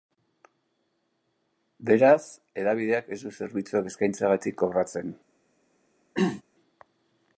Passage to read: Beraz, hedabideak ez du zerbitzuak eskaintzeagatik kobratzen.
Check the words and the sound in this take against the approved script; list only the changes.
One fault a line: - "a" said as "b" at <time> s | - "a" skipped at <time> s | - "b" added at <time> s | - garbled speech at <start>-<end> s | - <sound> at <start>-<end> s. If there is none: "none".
- throat clearing at 6.2-6.4 s